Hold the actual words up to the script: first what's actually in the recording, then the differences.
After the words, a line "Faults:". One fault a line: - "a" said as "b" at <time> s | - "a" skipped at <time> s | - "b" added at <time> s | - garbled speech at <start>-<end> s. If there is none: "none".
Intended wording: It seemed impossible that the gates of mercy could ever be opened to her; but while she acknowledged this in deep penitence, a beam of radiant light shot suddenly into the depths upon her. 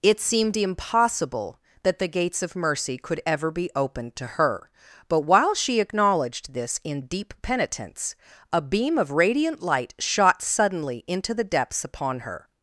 It seemed impossible that the gates of mercy could ever be opened to her; but while she acknowledged this in deep penitence, a beam of radiant light shot suddenly into the depths upon her.
Faults:
none